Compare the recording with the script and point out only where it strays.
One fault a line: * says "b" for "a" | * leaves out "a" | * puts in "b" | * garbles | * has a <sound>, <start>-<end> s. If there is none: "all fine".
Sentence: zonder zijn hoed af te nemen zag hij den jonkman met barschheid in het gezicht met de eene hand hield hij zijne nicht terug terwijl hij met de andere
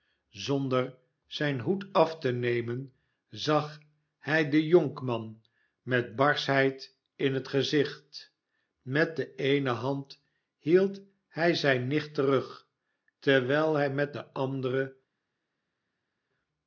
all fine